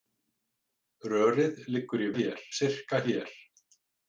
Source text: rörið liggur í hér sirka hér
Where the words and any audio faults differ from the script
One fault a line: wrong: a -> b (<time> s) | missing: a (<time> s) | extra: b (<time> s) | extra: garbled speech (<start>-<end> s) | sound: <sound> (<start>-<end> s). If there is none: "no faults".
no faults